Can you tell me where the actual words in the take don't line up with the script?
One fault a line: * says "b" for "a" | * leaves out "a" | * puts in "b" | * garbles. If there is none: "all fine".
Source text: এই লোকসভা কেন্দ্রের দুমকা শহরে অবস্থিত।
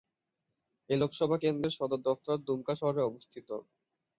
* puts in "সদর দফতর"